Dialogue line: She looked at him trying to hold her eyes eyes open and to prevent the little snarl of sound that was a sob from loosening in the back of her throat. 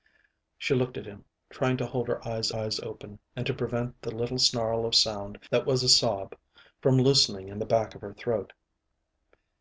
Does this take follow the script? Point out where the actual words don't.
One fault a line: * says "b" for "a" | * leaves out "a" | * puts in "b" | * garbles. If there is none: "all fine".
all fine